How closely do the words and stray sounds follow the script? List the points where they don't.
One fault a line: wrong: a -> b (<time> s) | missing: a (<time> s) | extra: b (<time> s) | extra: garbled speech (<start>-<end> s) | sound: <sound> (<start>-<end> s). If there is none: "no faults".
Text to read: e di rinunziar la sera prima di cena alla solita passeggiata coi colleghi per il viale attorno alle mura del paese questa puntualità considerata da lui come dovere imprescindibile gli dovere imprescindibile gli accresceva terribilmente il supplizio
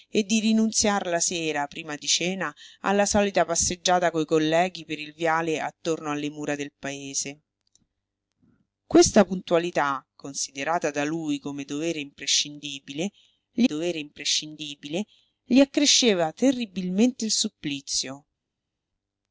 no faults